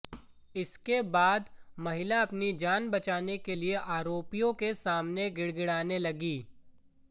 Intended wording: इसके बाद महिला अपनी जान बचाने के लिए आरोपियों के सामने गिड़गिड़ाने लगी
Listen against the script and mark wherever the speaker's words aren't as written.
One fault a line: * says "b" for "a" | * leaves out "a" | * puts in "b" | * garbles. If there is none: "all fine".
all fine